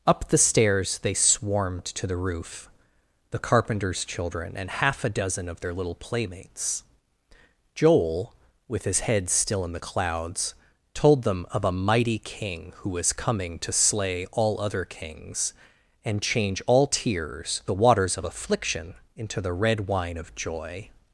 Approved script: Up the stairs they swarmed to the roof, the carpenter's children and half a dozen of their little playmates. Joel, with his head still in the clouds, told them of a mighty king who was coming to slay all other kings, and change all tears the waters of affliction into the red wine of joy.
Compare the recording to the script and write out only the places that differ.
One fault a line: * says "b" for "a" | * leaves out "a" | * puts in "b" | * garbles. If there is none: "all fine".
all fine